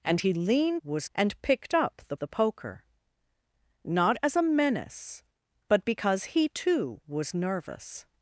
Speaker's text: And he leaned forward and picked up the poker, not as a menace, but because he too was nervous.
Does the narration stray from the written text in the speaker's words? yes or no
yes